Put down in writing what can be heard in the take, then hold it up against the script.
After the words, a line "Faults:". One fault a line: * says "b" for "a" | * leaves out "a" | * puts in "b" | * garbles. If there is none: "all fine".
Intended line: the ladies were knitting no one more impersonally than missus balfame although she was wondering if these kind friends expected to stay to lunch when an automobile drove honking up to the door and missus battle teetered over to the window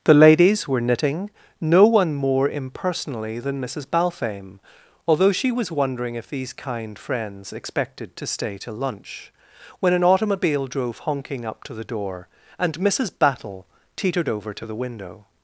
the ladies were knitting no one more impersonally than missus balfame although she was wondering if these kind friends expected to stay to lunch when an automobile drove honking up to the door and missus battle teetered over to the window
Faults:
all fine